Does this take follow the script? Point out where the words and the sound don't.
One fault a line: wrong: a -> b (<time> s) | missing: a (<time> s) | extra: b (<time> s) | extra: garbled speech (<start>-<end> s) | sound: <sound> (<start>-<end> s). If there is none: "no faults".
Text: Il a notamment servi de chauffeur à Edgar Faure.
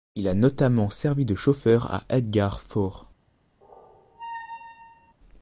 sound: squeak (3.6-5.1 s)